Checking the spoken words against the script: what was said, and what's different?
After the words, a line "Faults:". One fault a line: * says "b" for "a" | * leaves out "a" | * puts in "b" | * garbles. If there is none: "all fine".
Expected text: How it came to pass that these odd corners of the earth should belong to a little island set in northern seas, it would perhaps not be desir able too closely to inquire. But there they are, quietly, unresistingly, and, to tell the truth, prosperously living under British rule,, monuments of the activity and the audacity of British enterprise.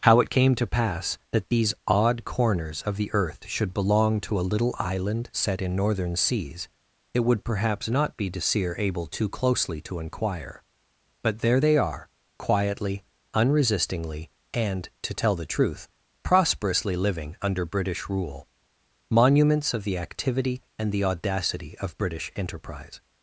How it came to pass that these odd corners of the earth should belong to a little island set in northern seas, it would perhaps not be desir able too closely to inquire. But there they are, quietly, unresistingly, and, to tell the truth, prosperously living under British rule,, monuments of the activity and the audacity of British enterprise.
Faults:
all fine